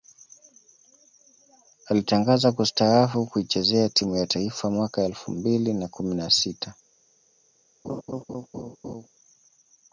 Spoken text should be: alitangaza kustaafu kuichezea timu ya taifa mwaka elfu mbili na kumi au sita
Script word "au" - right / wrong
wrong